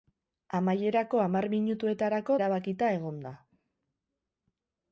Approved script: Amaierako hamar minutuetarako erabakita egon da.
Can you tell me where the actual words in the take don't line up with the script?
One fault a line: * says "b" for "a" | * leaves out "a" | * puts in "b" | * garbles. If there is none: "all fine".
all fine